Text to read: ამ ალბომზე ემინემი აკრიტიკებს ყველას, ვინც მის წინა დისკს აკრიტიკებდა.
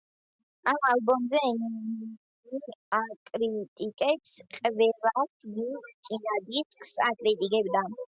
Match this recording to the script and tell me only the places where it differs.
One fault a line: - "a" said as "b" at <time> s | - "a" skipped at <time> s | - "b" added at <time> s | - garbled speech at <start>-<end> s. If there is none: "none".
- "მის" skipped at 5.9 s